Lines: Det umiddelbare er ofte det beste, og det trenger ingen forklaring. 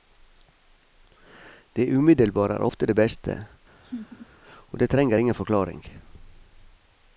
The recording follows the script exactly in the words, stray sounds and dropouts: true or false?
false